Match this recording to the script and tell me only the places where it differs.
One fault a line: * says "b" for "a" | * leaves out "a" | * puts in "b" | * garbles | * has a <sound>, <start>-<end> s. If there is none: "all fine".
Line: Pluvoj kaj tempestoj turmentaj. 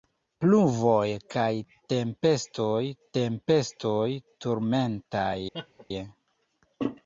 * puts in "tempestoj"
* has a laugh, 5.5-5.9 s